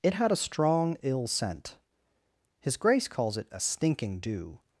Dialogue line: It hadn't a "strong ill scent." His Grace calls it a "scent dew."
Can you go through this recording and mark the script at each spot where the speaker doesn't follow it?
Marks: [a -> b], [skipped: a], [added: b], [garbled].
It [hadn't -> had] a "strong ill scent." His Grace calls it a ["scent -> stinking] dew."